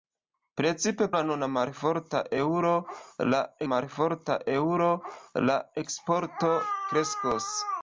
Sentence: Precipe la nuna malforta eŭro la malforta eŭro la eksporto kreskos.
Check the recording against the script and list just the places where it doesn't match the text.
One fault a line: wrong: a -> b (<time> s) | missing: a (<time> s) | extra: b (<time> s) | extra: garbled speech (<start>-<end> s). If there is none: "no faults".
no faults